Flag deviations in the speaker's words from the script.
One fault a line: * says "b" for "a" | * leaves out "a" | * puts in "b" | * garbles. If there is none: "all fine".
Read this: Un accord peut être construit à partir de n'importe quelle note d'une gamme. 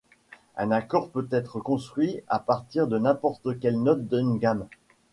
all fine